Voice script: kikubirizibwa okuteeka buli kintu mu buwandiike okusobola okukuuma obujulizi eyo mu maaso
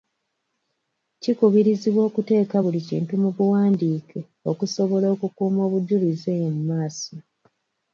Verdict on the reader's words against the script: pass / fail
pass